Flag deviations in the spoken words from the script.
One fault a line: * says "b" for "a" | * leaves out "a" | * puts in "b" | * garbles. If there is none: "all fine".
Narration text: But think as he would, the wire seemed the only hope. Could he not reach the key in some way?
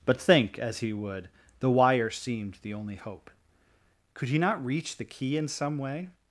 all fine